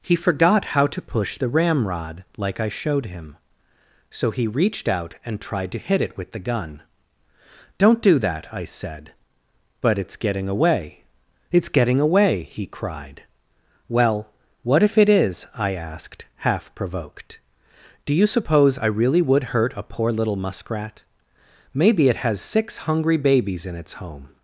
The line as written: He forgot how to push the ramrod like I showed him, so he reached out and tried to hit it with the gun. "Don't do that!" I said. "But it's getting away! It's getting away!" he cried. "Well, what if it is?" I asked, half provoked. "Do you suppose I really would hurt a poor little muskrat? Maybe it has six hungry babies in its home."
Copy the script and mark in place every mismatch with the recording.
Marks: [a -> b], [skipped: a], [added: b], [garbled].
He forgot how to push the ramrod like I showed him, so he reached out and tried to hit it with the gun. "Don't do that!" I said. "But it's getting away! It's getting away!" he cried. "Well, what if it is?" I asked, half provoked. "Do you suppose I really would hurt a poor little muskrat? Maybe it has six hungry babies in its home."